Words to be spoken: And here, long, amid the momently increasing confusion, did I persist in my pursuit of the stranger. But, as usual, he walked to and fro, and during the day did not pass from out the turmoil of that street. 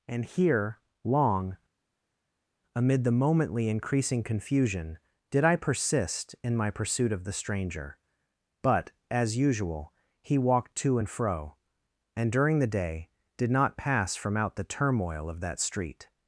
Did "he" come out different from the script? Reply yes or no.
no